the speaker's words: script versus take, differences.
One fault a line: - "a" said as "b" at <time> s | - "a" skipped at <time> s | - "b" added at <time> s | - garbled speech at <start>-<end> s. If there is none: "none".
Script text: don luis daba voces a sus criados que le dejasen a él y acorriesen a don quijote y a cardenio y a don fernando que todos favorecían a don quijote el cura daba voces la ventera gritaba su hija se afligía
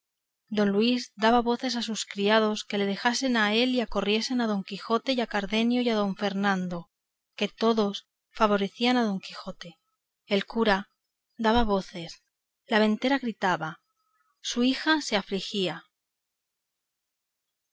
none